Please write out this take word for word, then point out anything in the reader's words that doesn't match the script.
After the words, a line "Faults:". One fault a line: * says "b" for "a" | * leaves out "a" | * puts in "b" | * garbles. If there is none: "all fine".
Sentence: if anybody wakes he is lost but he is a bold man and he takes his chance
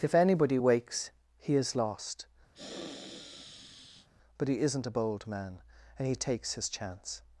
if anybody wakes he is lost but he isn't a bold man and he takes his chance
Faults:
* says "isn't" for "is"